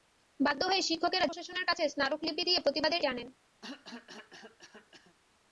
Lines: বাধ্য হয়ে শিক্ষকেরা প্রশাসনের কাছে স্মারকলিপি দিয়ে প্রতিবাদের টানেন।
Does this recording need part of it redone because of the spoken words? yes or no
no